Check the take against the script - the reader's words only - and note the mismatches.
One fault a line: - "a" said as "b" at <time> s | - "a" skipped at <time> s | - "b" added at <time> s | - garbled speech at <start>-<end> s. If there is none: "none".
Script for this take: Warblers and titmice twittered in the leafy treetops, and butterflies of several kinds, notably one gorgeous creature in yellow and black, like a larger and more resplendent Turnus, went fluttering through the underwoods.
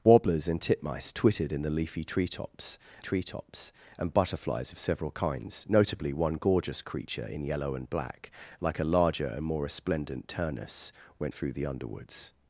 - "treetops" added at 3.0 s
- "fluttering" skipped at 11.3 s